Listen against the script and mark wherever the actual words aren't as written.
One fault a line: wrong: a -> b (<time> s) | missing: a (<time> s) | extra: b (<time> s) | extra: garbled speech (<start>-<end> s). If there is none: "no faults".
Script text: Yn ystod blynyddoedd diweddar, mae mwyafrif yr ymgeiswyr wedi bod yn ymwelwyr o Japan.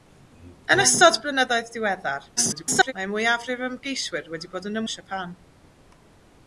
extra: garbled speech (2.4-2.9 s)
missing: ymwelwyr (4.8 s)